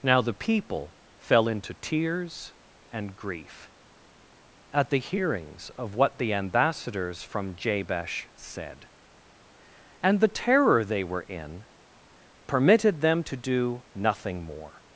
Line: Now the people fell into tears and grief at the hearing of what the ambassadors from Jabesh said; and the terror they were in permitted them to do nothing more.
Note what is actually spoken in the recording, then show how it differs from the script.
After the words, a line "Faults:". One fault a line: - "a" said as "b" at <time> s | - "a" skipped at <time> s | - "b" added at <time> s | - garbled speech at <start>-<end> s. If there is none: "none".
Now the people fell into tears and grief at the hearings of what the ambassadors from Jabesh said; and the terror they were in permitted them to do nothing more.
Faults:
- "hearing" said as "hearings" at 5.0 s